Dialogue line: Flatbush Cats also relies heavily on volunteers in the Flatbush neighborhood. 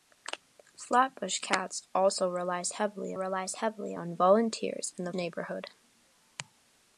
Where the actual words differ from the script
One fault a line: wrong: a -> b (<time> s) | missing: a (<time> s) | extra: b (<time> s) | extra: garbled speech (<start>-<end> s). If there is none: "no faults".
extra: relies heavily (3.1 s)
missing: Flatbush (5.1 s)